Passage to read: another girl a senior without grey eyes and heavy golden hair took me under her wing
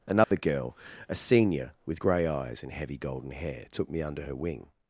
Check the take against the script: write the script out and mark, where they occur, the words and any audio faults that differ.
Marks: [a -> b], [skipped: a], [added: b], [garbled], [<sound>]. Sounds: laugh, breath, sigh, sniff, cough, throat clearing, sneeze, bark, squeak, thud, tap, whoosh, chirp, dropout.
another [dropout] girl a senior [without -> with] grey eyes and heavy golden hair took me under her wing